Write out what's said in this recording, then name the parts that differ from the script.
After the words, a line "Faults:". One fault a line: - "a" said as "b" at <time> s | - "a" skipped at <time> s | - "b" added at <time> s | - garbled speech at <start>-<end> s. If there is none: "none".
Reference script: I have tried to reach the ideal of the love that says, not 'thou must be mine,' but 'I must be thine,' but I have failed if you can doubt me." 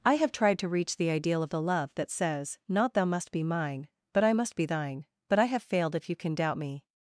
I have tried to reach the ideal of the love that says, not 'thou must be mine,' but 'I must be thine,' but I have failed if you can doubt me."
Faults:
none